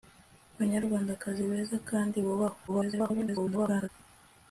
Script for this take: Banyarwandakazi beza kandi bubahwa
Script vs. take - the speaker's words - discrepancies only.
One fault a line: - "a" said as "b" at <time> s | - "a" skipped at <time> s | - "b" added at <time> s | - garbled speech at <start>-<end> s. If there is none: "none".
- garbled speech at 2.7-3.9 s